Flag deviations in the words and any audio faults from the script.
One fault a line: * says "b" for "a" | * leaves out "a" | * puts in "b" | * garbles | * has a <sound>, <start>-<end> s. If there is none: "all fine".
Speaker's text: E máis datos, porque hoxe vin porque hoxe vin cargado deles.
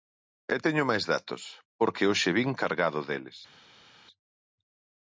* puts in "teño"
* leaves out "porque hoxe vin"